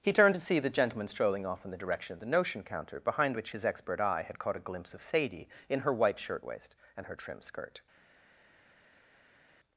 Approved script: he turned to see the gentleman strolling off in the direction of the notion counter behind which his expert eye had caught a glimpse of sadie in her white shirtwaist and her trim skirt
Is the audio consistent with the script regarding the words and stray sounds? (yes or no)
yes